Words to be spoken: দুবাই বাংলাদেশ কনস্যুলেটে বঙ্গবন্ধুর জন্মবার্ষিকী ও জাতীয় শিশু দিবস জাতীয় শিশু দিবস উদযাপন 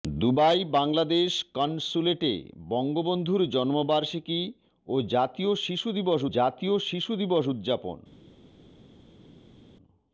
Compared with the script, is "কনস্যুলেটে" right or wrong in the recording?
right